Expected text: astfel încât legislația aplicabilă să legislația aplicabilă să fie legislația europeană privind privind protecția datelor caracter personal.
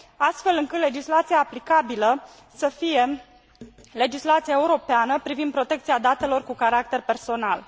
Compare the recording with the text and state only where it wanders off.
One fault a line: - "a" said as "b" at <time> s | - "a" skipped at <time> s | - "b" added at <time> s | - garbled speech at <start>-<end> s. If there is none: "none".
- "legislația aplicabilă să" skipped at 2.7 s
- "privind" skipped at 5.5 s
- "cu" added at 6.4 s